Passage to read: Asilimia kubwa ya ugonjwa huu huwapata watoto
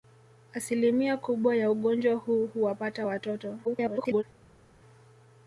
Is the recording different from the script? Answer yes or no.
yes